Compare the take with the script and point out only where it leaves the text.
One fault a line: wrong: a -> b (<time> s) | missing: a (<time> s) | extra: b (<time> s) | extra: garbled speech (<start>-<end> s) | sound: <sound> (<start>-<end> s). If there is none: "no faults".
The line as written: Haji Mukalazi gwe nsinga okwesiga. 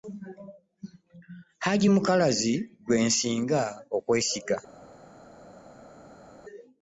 no faults